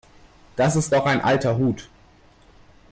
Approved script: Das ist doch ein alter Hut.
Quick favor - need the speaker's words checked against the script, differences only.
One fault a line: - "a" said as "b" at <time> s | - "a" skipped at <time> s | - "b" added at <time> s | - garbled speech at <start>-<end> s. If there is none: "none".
none